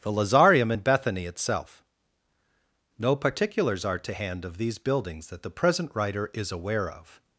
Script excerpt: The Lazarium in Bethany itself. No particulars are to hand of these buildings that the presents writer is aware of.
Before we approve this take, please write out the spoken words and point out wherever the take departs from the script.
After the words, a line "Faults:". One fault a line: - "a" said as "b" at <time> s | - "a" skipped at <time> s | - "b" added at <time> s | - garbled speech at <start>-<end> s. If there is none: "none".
The Lazarium in Bethany itself. No particulars are to hand of these buildings that the present writer is aware of.
Faults:
- "presents" said as "present" at 5.5 s